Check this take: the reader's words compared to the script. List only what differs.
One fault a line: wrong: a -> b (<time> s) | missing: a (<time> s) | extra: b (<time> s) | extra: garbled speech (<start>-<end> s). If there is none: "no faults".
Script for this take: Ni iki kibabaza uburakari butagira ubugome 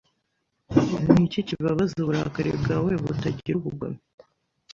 extra: bwawe (2.6 s)